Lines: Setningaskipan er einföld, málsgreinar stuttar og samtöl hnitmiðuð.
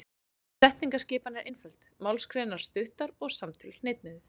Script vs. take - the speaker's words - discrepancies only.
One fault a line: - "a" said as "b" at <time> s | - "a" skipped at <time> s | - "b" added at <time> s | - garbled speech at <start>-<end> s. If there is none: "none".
none